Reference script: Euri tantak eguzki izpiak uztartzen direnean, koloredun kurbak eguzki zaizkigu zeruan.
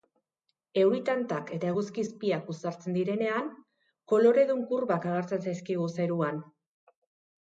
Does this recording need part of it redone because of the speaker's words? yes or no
yes